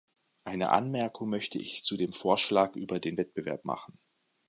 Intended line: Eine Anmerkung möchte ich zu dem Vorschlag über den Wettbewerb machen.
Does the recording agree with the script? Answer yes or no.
yes